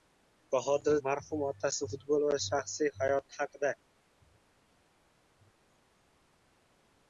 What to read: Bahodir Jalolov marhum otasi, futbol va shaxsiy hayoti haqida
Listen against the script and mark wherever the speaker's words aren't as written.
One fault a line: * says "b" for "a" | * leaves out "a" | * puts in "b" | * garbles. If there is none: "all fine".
* leaves out "Jalolov"